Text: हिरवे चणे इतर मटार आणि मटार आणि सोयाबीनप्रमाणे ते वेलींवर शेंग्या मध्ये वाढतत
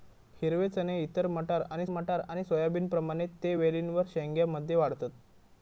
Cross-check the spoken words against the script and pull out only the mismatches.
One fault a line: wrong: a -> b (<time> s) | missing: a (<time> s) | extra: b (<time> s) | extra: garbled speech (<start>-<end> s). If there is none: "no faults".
no faults